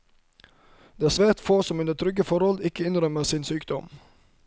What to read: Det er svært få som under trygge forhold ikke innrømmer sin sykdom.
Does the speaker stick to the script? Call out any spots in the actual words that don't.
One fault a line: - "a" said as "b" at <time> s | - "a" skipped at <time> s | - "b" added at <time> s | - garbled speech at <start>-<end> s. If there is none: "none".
none